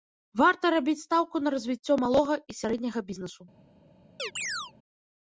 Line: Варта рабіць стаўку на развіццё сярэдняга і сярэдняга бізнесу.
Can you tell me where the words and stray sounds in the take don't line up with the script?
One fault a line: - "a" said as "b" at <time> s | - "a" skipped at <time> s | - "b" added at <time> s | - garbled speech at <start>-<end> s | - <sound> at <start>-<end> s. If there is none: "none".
- "сярэдняга" said as "малога" at 2.0 s
- chirp at 4.2-4.7 s